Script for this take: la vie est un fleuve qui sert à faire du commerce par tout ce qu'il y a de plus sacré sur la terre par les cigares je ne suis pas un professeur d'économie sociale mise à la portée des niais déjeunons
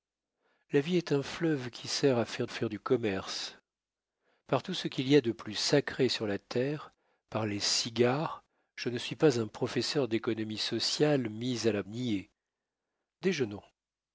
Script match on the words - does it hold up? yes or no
no